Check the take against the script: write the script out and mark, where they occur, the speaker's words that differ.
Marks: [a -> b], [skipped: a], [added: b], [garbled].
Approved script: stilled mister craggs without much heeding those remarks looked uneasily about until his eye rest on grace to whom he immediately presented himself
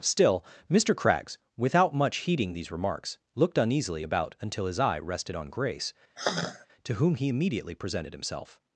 [stilled -> still] mister craggs without much heeding [those -> these] remarks looked uneasily about until his eye [rest -> rested] on grace to whom he immediately presented himself